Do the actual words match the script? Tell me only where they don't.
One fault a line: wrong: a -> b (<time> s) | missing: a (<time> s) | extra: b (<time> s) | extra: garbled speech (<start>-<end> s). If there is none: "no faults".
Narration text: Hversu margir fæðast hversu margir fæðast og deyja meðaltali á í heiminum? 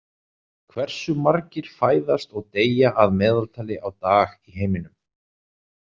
missing: hversu margir fæðast (2.3 s)
extra: að (3.0 s)
extra: dag (4.1 s)